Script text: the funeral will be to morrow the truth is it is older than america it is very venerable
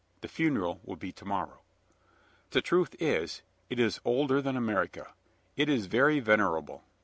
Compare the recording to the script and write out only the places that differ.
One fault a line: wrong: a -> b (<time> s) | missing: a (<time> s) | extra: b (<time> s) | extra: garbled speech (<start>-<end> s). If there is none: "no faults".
no faults